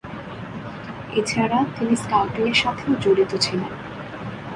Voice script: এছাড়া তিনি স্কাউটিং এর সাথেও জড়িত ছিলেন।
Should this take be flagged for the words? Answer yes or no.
no